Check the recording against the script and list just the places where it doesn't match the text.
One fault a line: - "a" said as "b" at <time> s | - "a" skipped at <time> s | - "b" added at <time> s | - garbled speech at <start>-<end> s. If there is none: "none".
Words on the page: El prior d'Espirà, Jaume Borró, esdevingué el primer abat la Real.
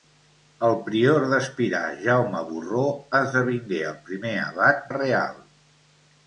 none